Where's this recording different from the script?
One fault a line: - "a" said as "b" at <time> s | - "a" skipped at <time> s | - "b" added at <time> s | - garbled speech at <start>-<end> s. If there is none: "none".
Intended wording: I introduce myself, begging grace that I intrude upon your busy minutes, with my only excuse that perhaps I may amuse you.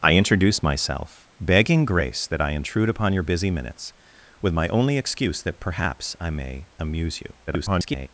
- garbled speech at 7.5-8.1 s